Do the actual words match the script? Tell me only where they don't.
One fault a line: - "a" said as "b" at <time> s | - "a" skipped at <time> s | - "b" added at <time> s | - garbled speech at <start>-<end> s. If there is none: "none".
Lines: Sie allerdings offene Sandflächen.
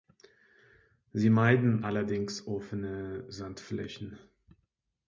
- "meiden" added at 1.3 s